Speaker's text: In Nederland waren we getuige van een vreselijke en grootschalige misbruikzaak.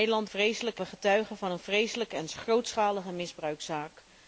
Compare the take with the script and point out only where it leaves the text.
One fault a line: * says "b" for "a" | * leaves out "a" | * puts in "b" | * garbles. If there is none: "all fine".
* says "vreselijke" for "waren"